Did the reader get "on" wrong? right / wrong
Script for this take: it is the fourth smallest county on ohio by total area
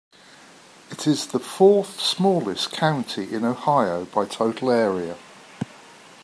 wrong